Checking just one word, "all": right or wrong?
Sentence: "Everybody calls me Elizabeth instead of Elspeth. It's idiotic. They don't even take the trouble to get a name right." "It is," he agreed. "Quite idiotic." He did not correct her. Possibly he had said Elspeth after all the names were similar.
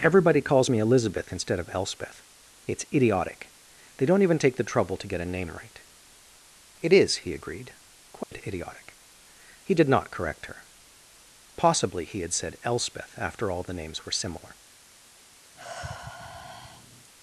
right